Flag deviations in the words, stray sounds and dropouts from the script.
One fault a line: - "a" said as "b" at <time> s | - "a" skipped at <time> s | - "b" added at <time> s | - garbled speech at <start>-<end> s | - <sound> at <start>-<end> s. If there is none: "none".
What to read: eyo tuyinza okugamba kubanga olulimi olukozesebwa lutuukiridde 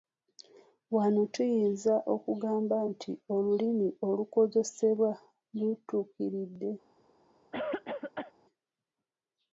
- "eyo" said as "wano" at 0.9 s
- "kubanga" said as "nti" at 2.9 s
- cough at 7.5-8.3 s